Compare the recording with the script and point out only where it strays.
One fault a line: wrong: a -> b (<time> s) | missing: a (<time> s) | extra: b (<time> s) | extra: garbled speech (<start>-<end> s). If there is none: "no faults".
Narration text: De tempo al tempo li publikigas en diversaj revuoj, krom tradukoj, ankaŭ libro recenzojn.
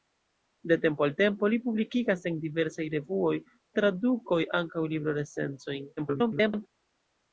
missing: krom (3.3 s)
extra: garbled speech (6.0-6.7 s)